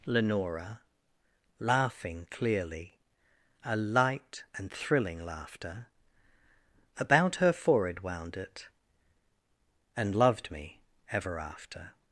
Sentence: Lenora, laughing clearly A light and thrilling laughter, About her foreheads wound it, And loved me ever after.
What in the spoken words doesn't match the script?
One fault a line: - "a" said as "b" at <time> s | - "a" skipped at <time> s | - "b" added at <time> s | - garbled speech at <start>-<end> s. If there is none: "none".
- "foreheads" said as "forehead" at 7.5 s